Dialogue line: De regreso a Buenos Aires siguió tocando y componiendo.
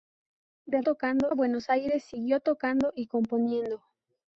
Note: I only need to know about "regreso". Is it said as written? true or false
false